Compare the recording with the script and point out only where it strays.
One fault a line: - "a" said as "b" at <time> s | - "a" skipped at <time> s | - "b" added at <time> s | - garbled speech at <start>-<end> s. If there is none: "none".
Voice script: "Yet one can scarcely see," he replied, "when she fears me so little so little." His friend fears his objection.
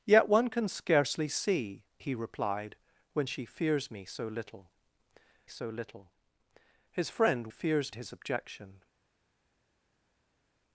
none